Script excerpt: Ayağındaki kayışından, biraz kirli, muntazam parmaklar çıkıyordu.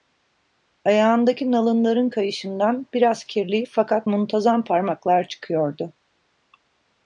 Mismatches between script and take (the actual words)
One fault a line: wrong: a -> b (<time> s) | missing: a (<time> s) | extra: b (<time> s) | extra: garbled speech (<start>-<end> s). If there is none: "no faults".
extra: nalınların (1.5 s)
extra: fakat (3.7 s)